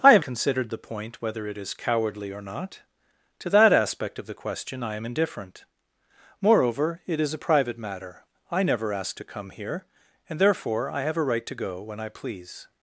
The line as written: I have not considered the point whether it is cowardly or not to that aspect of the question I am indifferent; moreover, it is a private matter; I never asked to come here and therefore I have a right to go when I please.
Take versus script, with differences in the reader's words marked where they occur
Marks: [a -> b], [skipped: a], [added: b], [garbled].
I have [skipped: not] considered the point whether it is cowardly or not to that aspect of the question I am indifferent; moreover, it is a private matter; I never asked to come here and therefore I have a right to go when I please.